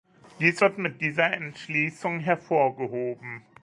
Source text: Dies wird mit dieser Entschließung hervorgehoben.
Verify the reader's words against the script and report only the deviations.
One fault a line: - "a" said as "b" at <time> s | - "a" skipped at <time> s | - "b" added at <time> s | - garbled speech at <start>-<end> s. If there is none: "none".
none